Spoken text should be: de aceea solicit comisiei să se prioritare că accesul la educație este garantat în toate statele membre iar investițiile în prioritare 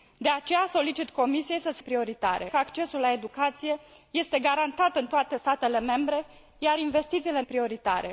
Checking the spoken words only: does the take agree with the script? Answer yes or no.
yes